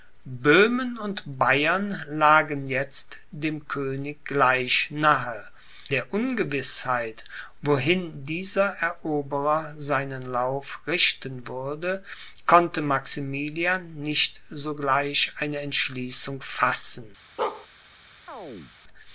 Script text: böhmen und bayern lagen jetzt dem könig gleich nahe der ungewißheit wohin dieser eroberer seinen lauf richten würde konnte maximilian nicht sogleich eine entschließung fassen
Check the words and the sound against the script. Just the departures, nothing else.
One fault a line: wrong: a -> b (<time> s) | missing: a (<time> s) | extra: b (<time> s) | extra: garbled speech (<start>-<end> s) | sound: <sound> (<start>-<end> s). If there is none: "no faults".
sound: bark (17.4-17.7 s)
sound: chirp (18.3-18.8 s)